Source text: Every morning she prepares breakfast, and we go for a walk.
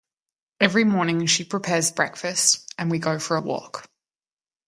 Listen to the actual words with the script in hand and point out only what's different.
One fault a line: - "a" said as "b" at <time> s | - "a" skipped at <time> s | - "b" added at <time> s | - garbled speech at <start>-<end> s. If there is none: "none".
none